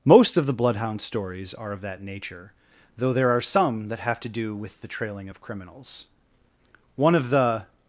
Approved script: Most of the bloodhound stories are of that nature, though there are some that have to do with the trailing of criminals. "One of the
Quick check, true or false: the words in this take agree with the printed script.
true